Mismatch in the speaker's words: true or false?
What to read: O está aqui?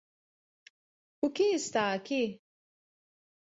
true